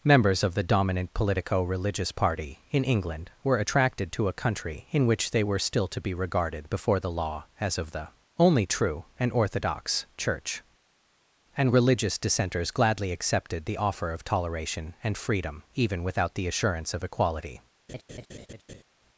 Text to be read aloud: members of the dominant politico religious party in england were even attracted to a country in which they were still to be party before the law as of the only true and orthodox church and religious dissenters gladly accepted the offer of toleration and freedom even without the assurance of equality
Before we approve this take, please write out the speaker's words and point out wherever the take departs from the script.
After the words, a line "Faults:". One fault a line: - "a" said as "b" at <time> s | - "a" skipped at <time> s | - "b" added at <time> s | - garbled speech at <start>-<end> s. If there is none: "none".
members of the dominant politico religious party in england were attracted to a country in which they were still to be regarded before the law as of the only true and orthodox church and religious dissenters gladly accepted the offer of toleration and freedom even without the assurance of equality
Faults:
- "even" skipped at 3.6 s
- "party" said as "regarded" at 6.1 s